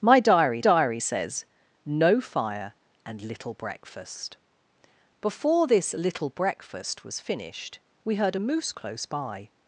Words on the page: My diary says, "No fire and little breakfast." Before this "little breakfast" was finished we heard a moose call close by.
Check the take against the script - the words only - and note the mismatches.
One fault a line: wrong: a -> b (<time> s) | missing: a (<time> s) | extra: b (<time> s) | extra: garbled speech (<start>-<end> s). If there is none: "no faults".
extra: diary (0.6 s)
missing: call (8.7 s)